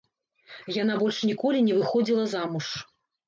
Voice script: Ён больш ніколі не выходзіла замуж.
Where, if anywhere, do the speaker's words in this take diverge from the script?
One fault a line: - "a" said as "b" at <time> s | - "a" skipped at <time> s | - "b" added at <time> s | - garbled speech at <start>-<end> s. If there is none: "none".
- "Ён" said as "Яна" at 0.8 s